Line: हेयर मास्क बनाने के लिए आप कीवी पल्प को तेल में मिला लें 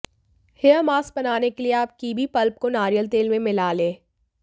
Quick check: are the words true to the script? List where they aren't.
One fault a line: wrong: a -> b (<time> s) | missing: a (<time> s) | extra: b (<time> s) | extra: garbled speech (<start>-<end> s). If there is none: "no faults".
extra: नारियल (2.7 s)